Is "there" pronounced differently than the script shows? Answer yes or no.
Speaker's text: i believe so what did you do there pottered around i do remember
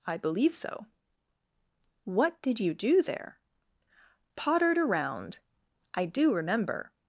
no